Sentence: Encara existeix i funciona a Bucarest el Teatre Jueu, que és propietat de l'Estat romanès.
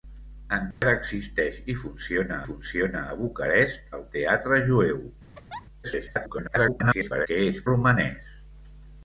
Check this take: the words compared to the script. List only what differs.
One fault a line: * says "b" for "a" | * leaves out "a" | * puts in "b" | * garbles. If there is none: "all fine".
* puts in "funciona"
* garbles
* leaves out "propietat de l'Estat"